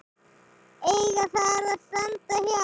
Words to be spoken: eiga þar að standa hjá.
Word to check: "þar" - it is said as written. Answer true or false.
true